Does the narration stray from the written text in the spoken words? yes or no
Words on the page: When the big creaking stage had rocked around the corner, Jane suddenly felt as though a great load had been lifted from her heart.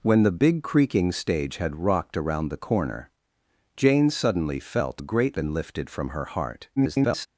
yes